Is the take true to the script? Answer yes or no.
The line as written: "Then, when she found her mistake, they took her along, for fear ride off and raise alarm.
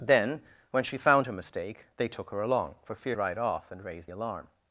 yes